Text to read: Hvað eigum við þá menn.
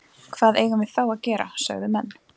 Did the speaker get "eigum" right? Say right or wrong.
right